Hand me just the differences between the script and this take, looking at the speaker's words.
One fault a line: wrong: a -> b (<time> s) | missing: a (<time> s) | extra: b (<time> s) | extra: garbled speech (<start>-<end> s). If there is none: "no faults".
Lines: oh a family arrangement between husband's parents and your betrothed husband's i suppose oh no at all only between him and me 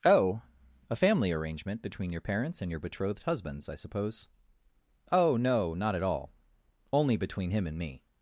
wrong: husband's -> your (2.1 s)
extra: not (5.7 s)